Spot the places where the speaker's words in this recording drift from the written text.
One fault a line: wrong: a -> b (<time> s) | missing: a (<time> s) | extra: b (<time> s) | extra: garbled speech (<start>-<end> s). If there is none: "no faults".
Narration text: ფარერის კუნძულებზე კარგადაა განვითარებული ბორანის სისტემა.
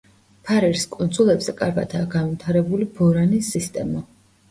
no faults